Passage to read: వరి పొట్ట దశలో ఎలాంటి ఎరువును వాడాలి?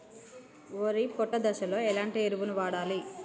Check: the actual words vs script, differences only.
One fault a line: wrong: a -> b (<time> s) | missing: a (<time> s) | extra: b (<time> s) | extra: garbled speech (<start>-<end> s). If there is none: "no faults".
no faults